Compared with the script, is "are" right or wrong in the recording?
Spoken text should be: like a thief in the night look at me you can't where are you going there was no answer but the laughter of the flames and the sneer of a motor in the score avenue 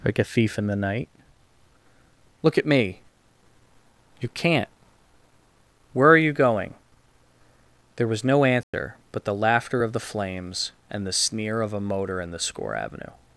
right